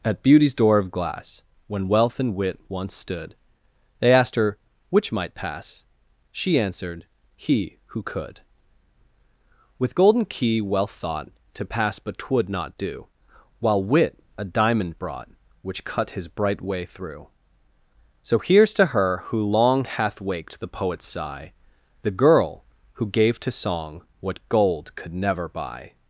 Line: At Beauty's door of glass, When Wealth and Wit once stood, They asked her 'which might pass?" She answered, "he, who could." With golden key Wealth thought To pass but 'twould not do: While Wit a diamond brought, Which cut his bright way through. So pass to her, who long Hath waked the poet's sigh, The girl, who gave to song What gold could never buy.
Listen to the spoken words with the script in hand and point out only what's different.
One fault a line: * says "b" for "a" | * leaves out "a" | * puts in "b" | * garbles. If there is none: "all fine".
* says "here's" for "pass"